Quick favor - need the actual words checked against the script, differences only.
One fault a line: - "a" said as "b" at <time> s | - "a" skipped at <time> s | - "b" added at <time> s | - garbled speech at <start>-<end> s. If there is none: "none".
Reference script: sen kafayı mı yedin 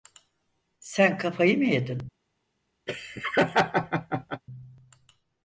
none